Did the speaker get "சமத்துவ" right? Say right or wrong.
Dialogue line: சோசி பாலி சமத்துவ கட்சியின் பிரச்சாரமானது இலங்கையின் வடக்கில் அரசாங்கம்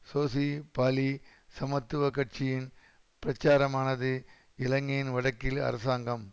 right